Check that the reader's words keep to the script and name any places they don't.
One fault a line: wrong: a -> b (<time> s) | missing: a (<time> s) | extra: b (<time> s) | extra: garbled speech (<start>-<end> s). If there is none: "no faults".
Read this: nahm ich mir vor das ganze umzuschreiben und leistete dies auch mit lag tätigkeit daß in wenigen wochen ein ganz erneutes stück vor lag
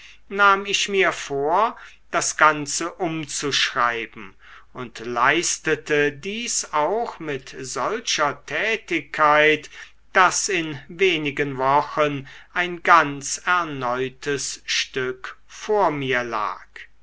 wrong: lag -> solcher (7.6 s)
extra: mir (15.9 s)